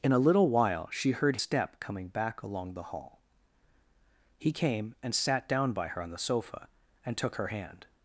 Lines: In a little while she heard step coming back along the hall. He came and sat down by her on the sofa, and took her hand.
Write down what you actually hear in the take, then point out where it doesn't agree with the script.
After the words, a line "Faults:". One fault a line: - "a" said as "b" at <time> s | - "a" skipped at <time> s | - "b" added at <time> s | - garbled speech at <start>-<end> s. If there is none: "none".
In a little while she heard step coming back along the hall. He came and sat down by her on the sofa, and took her hand.
Faults:
none